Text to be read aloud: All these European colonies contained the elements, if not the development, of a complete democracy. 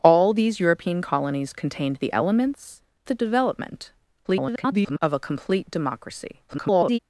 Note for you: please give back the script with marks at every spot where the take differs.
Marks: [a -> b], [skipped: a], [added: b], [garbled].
All these European colonies contained the elements, [skipped: if not] the development, [garbled] of a complete democracy. [garbled]